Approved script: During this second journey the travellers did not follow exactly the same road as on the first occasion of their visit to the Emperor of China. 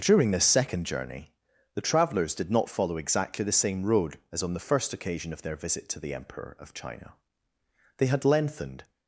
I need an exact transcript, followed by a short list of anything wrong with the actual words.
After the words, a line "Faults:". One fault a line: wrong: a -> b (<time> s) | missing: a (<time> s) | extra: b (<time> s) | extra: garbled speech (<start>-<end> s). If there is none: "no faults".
During this second journey the travellers did not follow exactly the same road as on the first occasion of their visit to the Emperor of China. They had lengthened
Faults:
extra: They had lengthened (8.0 s)